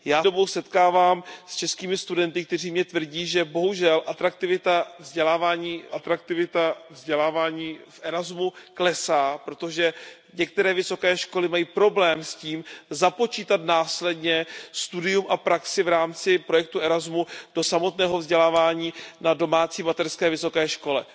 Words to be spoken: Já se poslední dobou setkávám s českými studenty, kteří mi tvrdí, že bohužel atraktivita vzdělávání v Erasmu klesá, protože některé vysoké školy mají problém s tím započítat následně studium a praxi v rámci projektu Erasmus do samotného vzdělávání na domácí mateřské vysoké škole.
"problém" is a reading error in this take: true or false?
false